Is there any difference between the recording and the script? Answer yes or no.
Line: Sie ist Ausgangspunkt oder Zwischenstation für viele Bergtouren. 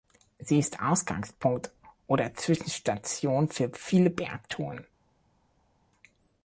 no